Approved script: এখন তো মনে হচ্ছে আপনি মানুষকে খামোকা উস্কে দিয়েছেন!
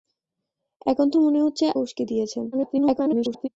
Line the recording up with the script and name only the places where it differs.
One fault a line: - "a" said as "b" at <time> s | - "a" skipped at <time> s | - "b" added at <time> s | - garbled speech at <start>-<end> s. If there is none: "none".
- "আপনি মানুষকে খামোকা" skipped at 1.6 s
- garbled speech at 2.5-3.5 s